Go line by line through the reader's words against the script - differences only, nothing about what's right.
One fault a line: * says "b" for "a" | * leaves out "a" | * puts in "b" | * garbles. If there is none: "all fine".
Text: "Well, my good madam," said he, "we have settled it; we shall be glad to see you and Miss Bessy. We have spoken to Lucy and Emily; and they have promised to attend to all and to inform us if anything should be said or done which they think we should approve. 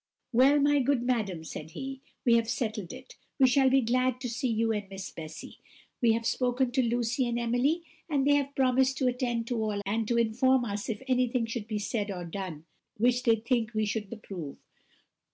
all fine